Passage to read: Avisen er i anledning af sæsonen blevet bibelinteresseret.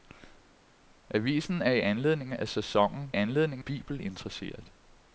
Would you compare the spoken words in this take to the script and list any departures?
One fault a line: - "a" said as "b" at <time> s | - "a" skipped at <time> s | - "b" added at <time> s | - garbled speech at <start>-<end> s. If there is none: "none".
- "blevet" said as "anledning" at 3.1 s